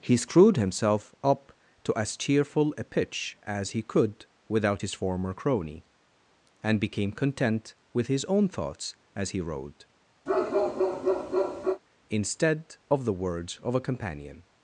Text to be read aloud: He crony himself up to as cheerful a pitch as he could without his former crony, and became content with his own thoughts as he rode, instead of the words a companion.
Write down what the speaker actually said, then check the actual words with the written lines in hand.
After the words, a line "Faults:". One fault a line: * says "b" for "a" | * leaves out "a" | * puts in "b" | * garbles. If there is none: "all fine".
He screwed himself up to as cheerful a pitch as he could without his former crony, and became content with his own thoughts as he rode, instead of the words of a companion.
Faults:
* says "screwed" for "crony"
* puts in "of"